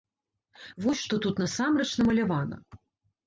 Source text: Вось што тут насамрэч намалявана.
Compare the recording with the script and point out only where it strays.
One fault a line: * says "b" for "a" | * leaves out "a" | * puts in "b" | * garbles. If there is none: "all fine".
all fine